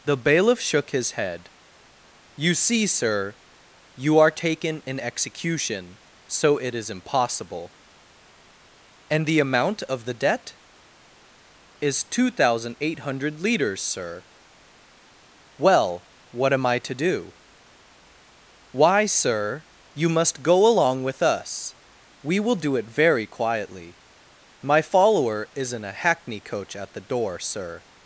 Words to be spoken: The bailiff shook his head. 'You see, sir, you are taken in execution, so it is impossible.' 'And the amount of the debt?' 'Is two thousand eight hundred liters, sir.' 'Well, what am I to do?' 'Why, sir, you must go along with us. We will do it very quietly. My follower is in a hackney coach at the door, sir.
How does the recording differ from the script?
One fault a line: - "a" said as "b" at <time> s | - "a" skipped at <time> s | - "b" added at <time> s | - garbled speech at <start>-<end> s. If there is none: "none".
none